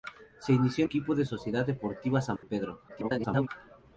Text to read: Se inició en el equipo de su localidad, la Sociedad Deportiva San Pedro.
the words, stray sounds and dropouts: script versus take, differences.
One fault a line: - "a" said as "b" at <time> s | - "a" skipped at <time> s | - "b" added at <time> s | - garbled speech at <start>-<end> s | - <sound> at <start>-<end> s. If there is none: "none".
- "el" skipped at 0.9 s
- "su localidad la" skipped at 1.2 s
- dropout at 2.4-2.4 s
- garbled speech at 2.9-3.5 s